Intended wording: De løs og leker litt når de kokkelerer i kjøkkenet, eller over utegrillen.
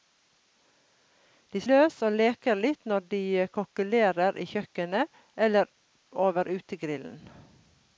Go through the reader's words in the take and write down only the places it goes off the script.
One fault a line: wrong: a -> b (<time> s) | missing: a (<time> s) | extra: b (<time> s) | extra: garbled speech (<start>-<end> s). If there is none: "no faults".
no faults